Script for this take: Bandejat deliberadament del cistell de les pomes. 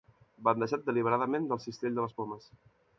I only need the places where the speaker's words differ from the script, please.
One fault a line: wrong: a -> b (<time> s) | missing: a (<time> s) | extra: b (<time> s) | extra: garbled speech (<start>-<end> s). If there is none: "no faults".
no faults